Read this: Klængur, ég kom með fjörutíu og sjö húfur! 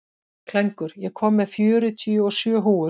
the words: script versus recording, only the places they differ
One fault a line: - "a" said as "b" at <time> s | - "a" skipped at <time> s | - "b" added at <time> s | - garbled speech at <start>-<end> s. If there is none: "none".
none